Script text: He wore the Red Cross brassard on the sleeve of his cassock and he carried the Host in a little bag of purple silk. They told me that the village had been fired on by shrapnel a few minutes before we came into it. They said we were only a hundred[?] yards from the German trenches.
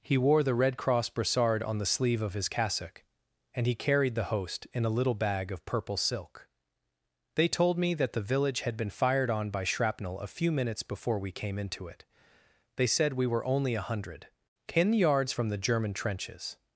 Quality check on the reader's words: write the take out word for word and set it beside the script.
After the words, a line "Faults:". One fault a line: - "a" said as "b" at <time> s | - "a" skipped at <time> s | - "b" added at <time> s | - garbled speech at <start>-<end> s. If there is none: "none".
He wore the Red Cross brassard on the sleeve of his cassock and he carried the Host in a little bag of purple silk. They told me that the village had been fired on by shrapnel a few minutes before we came into it. They said we were only a hundred[?] ten yards from the German trenches.
Faults:
- "ten" added at 14.7 s